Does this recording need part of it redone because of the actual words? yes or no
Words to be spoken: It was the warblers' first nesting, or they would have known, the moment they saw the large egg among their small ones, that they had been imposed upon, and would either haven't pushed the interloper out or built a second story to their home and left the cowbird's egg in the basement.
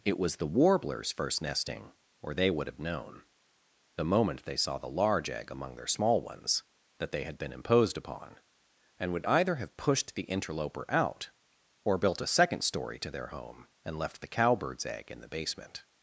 yes